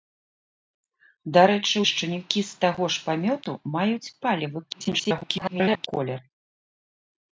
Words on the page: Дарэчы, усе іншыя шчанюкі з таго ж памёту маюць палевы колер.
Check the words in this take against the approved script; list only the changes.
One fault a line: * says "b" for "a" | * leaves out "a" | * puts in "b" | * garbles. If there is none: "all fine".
* leaves out "усе іншыя"
* garbles